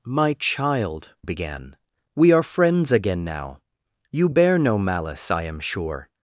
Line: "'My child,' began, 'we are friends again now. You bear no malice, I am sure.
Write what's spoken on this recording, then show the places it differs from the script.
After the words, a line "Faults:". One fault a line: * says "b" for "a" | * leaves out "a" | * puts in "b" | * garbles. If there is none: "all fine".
"'My child,' began, 'we are friends again now. You bear no malice, I am sure.
Faults:
all fine